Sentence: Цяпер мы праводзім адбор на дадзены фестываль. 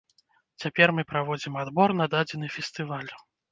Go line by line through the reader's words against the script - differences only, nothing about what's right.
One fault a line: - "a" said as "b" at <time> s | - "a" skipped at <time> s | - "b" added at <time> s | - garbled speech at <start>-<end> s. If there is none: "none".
none